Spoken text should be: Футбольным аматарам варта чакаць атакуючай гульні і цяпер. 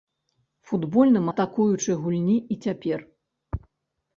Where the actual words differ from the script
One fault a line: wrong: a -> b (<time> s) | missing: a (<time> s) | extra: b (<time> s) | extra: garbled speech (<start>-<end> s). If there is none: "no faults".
missing: аматарам варта чакаць (1.3 s)